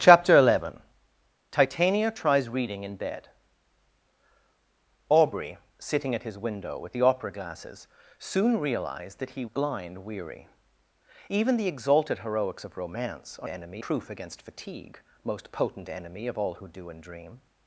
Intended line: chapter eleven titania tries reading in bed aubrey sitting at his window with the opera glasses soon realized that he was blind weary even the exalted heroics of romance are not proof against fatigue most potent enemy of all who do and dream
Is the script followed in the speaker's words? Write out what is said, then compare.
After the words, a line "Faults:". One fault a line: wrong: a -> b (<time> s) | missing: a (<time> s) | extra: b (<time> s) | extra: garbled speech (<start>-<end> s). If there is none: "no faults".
chapter eleven titania tries reading in bed aubrey sitting at his window with the opera glasses soon realized that he blind weary even the exalted heroics of romance are enemy proof against fatigue most potent enemy of all who do and dream
Faults:
missing: was (9.4 s)
wrong: not -> enemy (13.5 s)